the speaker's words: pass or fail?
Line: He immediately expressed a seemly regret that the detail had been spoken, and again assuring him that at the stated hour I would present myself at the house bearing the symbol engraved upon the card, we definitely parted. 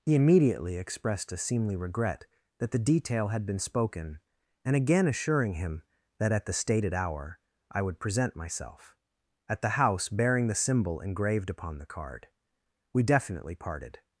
pass